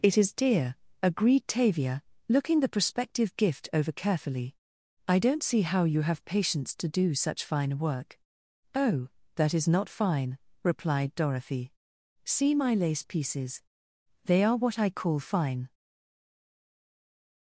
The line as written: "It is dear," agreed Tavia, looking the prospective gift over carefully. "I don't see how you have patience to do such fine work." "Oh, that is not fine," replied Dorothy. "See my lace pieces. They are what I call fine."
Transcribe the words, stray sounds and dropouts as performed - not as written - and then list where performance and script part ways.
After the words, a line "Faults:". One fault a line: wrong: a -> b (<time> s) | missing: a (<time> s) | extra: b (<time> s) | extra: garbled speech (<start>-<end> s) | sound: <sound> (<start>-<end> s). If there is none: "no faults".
"It is dear," agreed Tavia, looking the prospective gift over carefully. "I don't see how you have patience to do such fine work." "Oh, that is not fine," replied Dorothy. "See my lace pieces. They are what I call fine."
Faults:
no faults